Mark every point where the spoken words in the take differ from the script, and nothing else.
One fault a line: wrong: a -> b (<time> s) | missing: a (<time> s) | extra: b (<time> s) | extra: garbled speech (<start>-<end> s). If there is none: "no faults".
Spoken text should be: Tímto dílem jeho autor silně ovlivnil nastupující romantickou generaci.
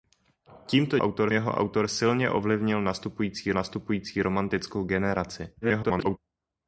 wrong: dílem -> autor (1.0 s)
extra: nastupující (3.5 s)
extra: garbled speech (5.6-6.2 s)